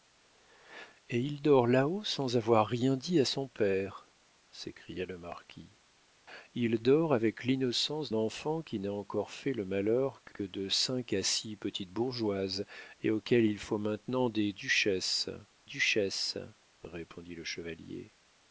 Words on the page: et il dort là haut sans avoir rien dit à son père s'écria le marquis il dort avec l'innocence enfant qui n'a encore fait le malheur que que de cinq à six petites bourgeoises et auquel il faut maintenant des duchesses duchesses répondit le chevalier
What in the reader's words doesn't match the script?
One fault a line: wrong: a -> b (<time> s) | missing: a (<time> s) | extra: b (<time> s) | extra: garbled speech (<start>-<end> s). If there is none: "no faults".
no faults